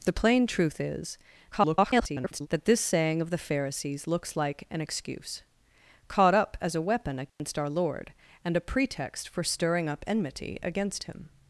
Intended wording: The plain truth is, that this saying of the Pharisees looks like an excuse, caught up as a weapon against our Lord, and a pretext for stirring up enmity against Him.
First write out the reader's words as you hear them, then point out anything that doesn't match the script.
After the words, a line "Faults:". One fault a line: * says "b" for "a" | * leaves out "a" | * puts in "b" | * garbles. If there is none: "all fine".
The plain truth is, [garbled] that this saying of the Pharisees looks like an excuse, caught up as a weapon against our Lord, and a pretext for stirring up enmity against Him.
Faults:
* garbles